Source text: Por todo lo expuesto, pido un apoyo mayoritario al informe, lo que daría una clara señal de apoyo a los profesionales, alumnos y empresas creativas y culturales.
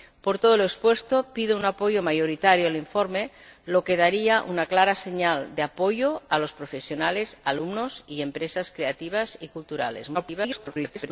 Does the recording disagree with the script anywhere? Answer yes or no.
yes